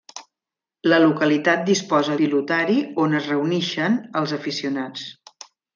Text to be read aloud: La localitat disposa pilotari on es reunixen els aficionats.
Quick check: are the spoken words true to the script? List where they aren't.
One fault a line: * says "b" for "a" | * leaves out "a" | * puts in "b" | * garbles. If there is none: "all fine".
all fine